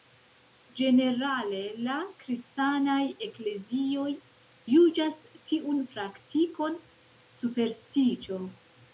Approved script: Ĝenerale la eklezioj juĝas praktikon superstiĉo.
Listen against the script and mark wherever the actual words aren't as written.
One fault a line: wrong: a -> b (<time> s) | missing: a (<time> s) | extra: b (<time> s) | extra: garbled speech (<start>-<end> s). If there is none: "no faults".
extra: kristanaj (2.2 s)
extra: tiun (5.5 s)